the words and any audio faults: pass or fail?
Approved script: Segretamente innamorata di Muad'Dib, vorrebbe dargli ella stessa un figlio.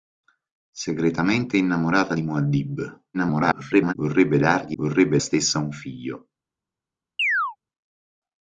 fail